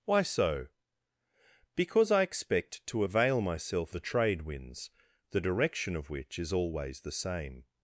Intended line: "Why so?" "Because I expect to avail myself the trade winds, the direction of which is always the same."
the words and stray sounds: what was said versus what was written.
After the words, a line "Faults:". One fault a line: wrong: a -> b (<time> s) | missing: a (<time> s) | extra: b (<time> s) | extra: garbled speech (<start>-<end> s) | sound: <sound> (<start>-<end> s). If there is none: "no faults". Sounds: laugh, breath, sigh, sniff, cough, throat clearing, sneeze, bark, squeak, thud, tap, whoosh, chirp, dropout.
"Why so?" "Because I expect to avail myself the trade winds, the direction of which is always the same."
Faults:
no faults